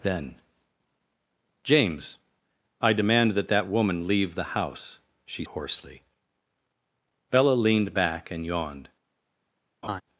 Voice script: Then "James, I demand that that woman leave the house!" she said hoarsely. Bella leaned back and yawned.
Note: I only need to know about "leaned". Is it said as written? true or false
true